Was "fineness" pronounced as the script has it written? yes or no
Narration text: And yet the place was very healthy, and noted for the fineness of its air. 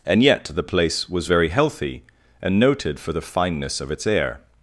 yes